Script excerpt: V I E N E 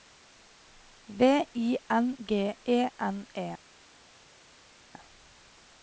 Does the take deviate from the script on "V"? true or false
false